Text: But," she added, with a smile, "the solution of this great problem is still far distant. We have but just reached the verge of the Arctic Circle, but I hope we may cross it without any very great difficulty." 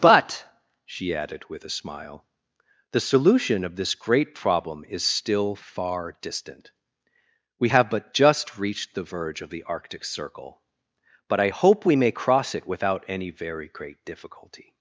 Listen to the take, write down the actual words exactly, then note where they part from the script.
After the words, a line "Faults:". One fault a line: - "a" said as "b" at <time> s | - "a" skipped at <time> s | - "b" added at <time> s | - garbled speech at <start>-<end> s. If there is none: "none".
But," she added, with a smile, "the solution of this great problem is still far distant. We have but just reached the verge of the Arctic Circle, but I hope we may cross it without any very great difficulty."
Faults:
none